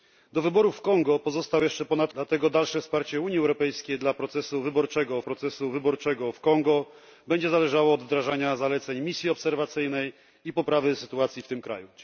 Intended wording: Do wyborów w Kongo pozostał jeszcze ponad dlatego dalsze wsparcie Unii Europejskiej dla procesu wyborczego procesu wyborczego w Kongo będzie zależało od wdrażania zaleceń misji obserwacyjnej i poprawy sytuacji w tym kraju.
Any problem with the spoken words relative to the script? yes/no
no